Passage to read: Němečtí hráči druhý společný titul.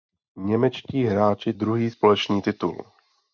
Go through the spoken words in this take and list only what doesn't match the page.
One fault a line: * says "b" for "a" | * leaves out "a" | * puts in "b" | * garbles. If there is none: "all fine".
all fine